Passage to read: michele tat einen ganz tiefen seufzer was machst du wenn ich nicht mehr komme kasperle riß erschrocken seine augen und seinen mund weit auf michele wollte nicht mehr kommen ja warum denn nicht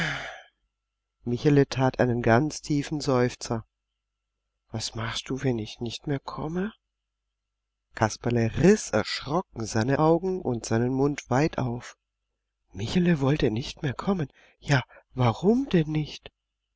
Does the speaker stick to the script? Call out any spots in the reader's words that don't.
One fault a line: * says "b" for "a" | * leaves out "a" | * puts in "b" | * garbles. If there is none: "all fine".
all fine